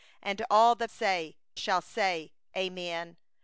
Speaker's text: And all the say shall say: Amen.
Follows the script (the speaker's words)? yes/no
yes